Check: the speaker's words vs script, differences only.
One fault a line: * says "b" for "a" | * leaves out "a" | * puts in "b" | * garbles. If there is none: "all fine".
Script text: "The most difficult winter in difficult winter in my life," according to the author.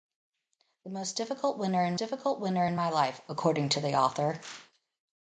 all fine